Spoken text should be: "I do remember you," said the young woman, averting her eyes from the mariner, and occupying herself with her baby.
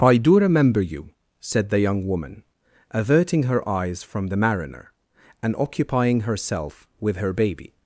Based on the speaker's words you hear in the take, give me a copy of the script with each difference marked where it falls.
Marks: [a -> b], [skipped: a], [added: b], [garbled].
"I do remember you," said the young woman, averting her eyes from the mariner, and occupying herself with her baby.